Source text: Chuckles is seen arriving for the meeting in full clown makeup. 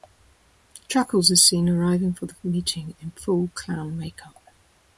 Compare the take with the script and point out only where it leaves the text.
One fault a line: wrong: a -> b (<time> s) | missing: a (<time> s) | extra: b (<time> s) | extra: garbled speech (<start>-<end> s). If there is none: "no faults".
no faults